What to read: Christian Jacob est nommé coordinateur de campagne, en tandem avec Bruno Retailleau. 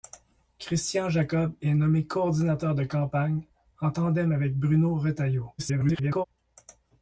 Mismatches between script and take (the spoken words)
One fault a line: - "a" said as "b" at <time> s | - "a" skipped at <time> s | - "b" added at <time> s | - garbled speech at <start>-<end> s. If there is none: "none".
- garbled speech at 5.6-6.2 s